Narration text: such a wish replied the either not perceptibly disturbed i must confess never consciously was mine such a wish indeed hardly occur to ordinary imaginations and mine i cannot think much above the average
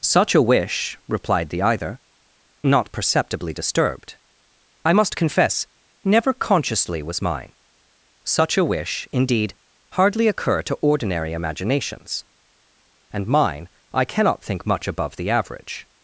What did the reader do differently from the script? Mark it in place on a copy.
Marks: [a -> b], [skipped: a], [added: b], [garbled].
such a wish replied the either not perceptibly disturbed i must confess never consciously was mine such a wish indeed hardly occur to ordinary imaginations and mine i cannot think much above the average